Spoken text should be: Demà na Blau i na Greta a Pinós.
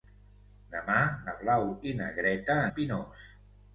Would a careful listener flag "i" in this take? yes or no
no